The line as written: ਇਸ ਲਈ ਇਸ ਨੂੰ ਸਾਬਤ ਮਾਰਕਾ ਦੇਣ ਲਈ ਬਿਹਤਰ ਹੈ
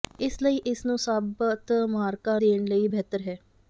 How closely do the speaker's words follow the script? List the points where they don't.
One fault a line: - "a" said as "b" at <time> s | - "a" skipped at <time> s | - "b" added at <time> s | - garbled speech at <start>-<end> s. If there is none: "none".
none